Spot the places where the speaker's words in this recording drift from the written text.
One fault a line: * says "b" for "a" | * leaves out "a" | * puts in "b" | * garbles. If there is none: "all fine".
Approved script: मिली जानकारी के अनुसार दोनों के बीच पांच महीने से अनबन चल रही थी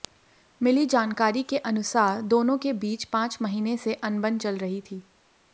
all fine